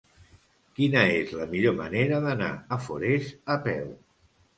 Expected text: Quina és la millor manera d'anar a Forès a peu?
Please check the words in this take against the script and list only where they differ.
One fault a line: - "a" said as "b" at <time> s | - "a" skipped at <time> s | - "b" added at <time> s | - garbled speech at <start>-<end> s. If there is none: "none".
none